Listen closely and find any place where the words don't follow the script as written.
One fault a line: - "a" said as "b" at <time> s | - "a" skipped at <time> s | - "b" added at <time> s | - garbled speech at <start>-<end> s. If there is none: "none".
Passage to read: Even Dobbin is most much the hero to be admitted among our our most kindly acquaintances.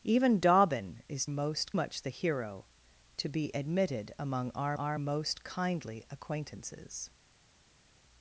none